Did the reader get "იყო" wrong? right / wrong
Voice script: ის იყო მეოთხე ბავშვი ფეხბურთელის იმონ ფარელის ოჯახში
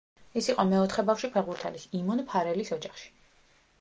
right